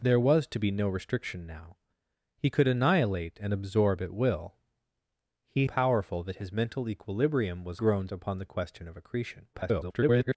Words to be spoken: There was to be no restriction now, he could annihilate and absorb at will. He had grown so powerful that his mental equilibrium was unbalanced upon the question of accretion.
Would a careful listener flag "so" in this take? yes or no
yes